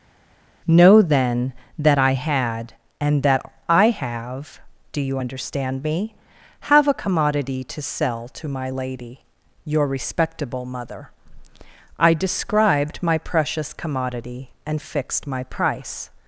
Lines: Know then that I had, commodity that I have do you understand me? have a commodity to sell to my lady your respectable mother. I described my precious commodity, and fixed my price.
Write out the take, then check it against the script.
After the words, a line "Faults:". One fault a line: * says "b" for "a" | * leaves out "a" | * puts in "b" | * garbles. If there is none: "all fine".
Know then that I had, and that I have do you understand me? have a commodity to sell to my lady your respectable mother. I described my precious commodity, and fixed my price.
Faults:
* says "and" for "commodity"